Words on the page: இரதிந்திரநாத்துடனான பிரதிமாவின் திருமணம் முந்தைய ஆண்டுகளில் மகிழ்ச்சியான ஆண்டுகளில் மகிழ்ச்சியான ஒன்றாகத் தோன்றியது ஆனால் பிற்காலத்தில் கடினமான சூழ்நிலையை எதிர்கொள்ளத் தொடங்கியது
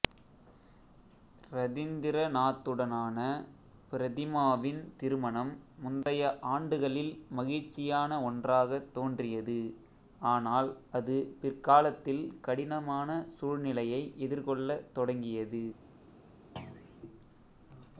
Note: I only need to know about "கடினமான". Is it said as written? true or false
true